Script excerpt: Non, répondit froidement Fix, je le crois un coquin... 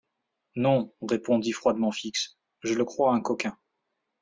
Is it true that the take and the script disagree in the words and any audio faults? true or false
false